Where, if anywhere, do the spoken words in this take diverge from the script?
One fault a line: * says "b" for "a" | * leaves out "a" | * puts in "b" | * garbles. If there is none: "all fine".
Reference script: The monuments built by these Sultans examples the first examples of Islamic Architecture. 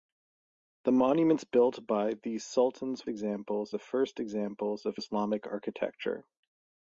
all fine